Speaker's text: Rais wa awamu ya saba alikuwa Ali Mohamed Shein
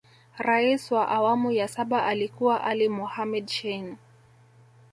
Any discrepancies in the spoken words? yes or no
no